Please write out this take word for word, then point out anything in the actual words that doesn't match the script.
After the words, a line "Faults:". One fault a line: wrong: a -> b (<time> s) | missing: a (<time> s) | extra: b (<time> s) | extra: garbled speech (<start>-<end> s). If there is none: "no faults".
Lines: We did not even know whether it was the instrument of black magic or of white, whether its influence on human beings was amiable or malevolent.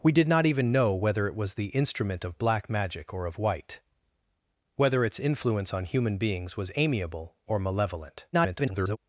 We did not even know whether it was the instrument of black magic or of white, whether its influence on human beings was amiable or malevolent. [garbled]
Faults:
extra: garbled speech (8.3-9.0 s)